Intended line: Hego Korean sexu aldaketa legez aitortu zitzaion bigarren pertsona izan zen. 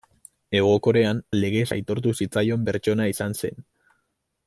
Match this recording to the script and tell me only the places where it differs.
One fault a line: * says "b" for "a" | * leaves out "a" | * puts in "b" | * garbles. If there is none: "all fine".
* leaves out "sexu aldaketa"
* leaves out "bigarren"